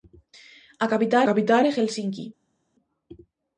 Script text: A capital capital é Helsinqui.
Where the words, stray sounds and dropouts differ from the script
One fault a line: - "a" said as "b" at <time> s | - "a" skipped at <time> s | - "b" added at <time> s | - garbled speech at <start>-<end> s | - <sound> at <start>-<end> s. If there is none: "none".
none